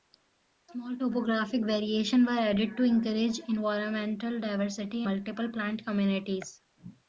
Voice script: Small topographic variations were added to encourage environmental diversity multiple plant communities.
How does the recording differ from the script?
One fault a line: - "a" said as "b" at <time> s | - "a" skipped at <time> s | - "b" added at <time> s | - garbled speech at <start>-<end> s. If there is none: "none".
none